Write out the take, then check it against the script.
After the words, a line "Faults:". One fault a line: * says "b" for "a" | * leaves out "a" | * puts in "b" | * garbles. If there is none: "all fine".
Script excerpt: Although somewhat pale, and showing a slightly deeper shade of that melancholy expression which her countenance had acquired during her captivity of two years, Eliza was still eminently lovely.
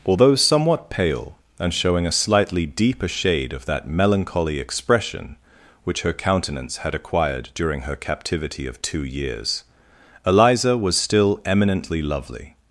Although somewhat pale, and showing a slightly deeper shade of that melancholy expression which her countenance had acquired during her captivity of two years, Eliza was still eminently lovely.
Faults:
all fine